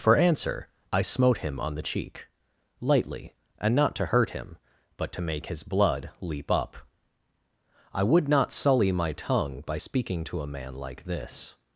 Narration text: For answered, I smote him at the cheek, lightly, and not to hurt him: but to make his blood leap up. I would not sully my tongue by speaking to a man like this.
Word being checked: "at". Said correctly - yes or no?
no